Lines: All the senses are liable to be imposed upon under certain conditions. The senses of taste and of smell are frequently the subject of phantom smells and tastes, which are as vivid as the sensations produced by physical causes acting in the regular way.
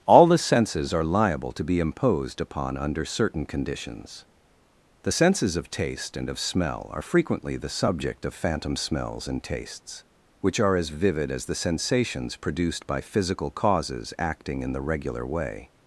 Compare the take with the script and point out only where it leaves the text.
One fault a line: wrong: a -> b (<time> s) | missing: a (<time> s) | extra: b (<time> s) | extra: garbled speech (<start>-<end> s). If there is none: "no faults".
no faults